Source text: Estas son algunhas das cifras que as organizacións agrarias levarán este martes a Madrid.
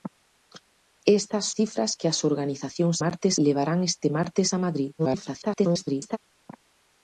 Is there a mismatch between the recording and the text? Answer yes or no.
yes